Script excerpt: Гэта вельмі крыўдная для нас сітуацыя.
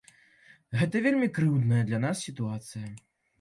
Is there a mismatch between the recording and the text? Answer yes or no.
no